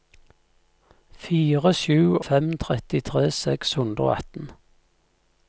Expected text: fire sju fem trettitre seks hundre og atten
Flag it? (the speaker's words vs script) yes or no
no